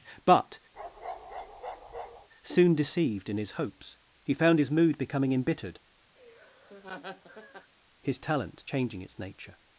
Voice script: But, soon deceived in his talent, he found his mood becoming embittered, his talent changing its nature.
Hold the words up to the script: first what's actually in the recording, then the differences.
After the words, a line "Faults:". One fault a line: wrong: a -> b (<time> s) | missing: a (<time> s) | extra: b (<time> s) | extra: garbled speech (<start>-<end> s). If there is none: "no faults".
But, soon deceived in his hopes, he found his mood becoming embittered, his talent changing its nature.
Faults:
wrong: talent -> hopes (3.5 s)